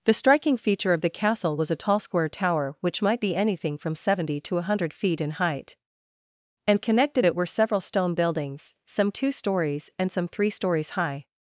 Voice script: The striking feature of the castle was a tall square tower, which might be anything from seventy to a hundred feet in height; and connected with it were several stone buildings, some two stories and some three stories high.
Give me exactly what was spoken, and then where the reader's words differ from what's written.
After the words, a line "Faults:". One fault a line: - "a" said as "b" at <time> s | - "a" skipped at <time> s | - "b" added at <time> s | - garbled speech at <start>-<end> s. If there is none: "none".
The striking feature of the castle was a tall square tower, which might be anything from seventy to a hundred feet in height; and connected it were several stone buildings, some two stories and some three stories high.
Faults:
- "with" skipped at 7.2 s